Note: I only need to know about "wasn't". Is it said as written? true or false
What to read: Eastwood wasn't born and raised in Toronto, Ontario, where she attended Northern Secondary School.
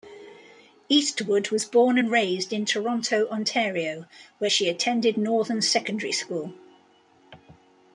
false